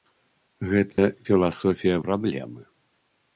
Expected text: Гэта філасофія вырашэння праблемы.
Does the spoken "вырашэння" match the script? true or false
false